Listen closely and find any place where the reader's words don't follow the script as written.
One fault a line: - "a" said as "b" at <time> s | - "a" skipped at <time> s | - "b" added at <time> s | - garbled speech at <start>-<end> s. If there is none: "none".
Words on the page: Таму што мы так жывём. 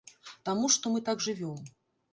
none